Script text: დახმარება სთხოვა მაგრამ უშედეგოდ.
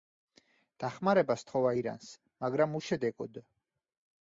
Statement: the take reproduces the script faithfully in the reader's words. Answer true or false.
false